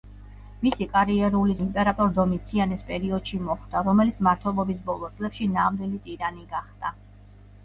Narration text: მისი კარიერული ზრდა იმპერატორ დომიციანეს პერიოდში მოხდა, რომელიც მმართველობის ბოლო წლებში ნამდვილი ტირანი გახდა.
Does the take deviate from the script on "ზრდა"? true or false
true